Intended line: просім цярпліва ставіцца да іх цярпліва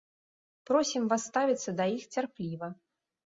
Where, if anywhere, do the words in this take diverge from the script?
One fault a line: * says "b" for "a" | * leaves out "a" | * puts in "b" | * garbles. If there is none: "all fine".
* says "вас" for "цярпліва"